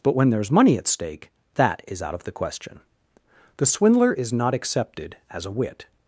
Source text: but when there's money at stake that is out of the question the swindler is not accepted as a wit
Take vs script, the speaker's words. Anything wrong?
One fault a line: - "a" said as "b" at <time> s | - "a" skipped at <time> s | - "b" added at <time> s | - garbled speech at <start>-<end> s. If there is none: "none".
none